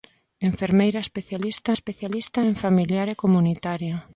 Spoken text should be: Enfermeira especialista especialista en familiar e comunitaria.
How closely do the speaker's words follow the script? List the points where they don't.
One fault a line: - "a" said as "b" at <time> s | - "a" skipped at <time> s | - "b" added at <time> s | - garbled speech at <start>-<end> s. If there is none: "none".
none